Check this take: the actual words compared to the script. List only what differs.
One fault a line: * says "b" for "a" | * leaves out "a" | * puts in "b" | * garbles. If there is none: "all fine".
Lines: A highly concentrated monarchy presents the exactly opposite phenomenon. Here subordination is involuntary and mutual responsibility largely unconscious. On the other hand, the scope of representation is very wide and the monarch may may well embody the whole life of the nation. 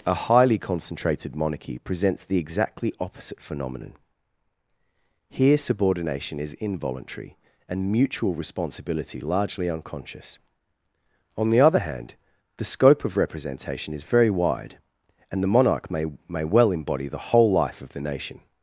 all fine